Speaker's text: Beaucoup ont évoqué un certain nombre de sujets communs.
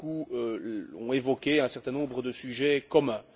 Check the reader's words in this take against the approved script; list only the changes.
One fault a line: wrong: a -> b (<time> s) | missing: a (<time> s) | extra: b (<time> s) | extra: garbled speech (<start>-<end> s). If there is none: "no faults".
no faults